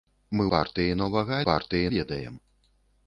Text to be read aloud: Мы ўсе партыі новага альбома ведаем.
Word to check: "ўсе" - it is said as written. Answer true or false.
false